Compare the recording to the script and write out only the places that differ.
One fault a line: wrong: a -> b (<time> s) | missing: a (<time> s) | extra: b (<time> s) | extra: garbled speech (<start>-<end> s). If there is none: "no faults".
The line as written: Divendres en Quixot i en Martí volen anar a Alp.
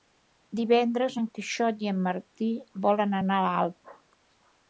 no faults